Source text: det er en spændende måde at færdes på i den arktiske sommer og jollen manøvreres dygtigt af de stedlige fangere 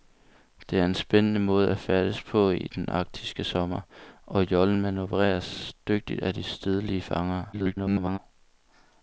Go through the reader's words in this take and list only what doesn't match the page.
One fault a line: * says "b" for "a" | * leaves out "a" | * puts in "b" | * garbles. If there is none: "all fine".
* garbles